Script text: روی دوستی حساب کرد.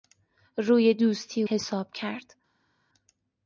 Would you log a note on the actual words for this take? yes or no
no